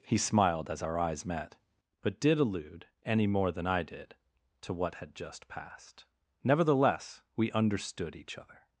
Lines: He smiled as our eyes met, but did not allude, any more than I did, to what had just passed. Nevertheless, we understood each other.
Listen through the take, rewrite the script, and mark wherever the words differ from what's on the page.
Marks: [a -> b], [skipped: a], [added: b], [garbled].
He smiled as our eyes met, but did [skipped: not] allude, any more than I did, to what had just passed. Nevertheless, we understood each other.